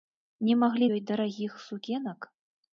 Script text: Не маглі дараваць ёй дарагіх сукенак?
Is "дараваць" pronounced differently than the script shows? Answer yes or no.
yes